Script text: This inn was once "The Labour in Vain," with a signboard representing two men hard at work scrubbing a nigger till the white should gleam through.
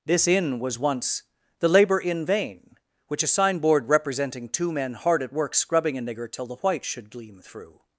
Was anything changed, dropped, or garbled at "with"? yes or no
yes